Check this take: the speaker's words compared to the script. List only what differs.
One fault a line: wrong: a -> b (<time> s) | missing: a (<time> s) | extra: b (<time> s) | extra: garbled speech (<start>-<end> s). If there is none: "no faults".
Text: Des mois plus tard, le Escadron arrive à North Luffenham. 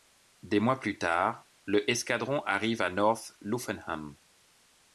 no faults